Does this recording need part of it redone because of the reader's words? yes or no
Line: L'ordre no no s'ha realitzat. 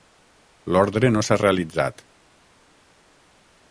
yes